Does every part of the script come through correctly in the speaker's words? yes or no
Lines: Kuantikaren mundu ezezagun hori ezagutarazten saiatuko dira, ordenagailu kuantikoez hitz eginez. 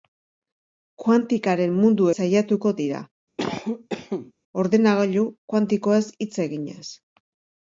no